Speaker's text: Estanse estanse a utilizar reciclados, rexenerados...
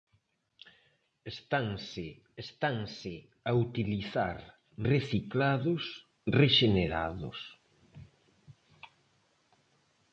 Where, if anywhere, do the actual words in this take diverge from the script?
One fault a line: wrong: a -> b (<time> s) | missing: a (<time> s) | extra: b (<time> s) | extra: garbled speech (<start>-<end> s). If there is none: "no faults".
no faults